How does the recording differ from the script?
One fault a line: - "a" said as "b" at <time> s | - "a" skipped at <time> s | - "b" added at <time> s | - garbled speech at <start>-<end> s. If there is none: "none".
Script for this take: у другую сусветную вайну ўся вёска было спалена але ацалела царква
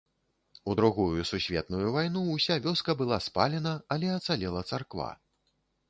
- "было" said as "была" at 3.0 s